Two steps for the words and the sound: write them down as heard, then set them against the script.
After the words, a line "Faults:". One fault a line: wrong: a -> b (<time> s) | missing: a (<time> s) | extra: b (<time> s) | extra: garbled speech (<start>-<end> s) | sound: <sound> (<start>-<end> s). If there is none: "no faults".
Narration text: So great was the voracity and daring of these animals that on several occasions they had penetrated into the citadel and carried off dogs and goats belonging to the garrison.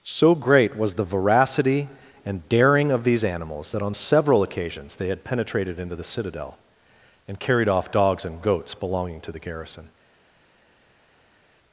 So great was the voracity and daring of these animals that on several occasions they had penetrated into the citadel and carried off dogs and goats belonging to the garrison.
Faults:
no faults